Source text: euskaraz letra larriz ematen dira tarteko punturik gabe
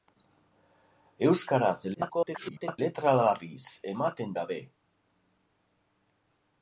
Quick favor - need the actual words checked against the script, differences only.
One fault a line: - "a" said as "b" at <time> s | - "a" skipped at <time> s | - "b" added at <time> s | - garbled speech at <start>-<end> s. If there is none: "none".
- garbled speech at 1.9-2.8 s
- "dira tarteko punturik" skipped at 4.4 s